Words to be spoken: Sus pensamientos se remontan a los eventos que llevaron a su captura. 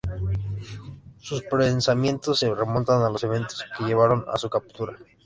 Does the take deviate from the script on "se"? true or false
false